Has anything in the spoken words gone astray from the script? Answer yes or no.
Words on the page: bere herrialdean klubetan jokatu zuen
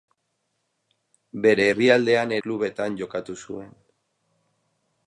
no